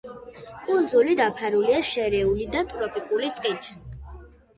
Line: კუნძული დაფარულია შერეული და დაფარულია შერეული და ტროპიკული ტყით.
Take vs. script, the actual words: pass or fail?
fail